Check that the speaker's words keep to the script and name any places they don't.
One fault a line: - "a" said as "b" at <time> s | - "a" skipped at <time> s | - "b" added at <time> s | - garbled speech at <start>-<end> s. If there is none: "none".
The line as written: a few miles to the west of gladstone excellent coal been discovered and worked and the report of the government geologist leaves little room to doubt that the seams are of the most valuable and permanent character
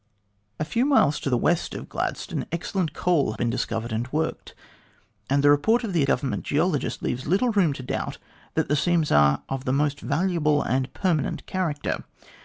none